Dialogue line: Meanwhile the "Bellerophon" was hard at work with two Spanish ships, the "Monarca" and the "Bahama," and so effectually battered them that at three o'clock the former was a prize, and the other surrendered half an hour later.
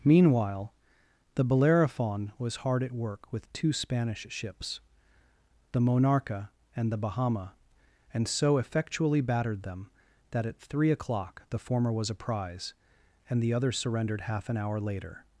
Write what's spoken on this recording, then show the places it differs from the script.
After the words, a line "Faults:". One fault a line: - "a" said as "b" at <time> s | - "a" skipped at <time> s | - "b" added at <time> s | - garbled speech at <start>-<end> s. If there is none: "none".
Meanwhile the "Bellerophon" was hard at work with two Spanish ships, the "Monarca" and the "Bahama," and so effectually battered them that at three o'clock the former was a prize, and the other surrendered half an hour later.
Faults:
none